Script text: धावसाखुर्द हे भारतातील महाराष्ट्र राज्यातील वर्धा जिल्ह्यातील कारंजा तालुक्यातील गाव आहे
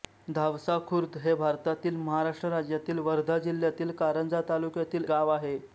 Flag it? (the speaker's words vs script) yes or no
no